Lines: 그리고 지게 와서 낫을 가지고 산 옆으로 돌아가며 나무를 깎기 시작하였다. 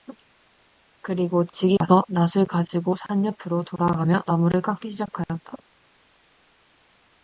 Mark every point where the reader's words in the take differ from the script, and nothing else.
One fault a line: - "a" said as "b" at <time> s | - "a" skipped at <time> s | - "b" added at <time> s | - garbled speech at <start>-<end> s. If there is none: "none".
none